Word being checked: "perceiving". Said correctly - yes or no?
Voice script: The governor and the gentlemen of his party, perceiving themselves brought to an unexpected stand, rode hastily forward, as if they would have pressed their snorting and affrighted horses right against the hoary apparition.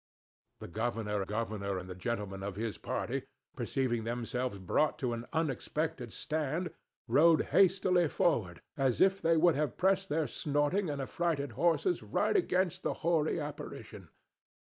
yes